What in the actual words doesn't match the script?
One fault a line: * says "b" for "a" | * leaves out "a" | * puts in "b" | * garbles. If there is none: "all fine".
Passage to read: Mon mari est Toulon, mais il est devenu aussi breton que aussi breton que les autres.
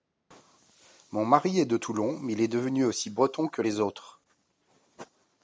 * puts in "de"
* leaves out "aussi breton que"